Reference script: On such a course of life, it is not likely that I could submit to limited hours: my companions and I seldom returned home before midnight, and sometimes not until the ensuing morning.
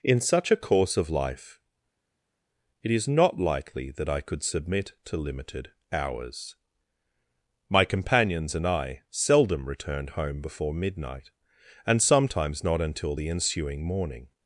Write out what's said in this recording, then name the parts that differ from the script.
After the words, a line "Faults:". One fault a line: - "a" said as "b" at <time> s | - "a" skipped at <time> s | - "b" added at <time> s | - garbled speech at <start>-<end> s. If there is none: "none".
In such a course of life, it is not likely that I could submit to limited hours: my companions and I seldom returned home before midnight, and sometimes not until the ensuing morning.
Faults:
- "On" said as "In" at 0.0 s